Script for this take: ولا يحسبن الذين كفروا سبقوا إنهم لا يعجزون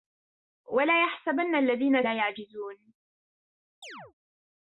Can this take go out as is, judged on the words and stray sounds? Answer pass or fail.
fail